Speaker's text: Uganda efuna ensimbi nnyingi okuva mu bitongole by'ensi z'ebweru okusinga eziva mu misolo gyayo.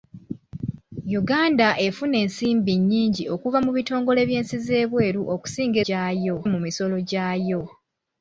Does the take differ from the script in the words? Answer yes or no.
yes